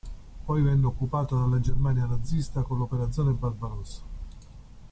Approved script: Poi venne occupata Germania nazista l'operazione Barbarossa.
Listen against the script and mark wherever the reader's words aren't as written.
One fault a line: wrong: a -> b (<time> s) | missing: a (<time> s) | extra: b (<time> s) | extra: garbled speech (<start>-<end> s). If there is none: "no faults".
extra: dalla (1.4 s)
extra: con (2.6 s)